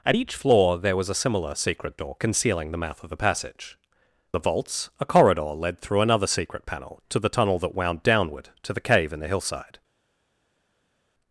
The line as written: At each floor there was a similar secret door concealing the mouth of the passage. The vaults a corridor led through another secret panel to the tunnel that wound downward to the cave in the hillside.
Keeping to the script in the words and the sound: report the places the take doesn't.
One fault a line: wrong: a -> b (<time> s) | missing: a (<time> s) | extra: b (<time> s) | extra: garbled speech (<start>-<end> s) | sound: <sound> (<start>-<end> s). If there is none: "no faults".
no faults